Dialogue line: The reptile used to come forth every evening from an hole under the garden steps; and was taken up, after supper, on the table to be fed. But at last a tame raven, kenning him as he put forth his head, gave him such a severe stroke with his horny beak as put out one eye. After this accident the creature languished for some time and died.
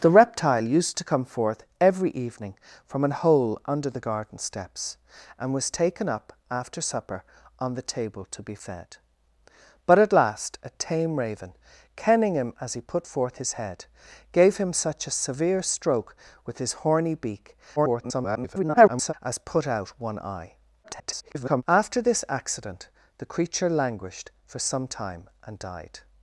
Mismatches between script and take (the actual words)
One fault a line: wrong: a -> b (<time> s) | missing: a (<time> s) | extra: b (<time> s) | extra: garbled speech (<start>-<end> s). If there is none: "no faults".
extra: garbled speech (17.8-19.1 s)
extra: garbled speech (20.8-21.6 s)